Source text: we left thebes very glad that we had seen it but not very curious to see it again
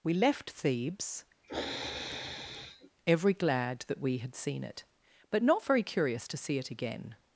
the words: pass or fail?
fail